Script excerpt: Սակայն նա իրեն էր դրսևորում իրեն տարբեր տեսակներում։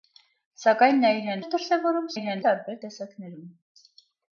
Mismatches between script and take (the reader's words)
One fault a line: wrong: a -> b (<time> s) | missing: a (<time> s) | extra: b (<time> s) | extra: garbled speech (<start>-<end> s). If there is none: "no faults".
no faults